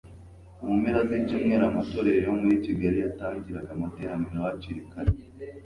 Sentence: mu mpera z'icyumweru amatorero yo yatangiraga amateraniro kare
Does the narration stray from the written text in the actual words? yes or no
yes